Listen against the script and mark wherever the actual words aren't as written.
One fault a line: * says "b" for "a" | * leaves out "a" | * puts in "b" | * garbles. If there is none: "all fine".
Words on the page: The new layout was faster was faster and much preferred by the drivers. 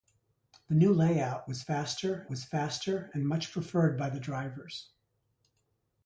all fine